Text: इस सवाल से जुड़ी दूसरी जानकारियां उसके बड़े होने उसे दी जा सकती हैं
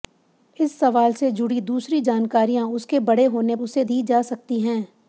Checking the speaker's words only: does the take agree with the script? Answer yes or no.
yes